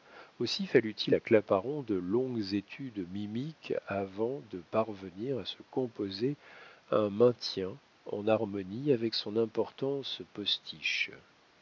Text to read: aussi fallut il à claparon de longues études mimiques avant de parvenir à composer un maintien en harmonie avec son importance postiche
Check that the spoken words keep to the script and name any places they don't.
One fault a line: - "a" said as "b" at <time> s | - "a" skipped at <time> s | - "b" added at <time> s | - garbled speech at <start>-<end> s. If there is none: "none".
- "se" added at 5.4 s